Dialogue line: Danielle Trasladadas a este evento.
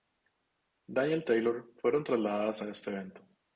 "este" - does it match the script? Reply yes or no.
yes